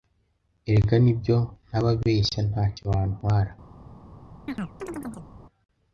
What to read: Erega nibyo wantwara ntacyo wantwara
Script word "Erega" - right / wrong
right